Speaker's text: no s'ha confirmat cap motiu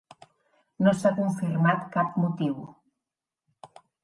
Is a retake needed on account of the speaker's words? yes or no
no